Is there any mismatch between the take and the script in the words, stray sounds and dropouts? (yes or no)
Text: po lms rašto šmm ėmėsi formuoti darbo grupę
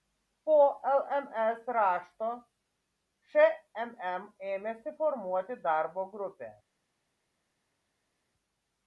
no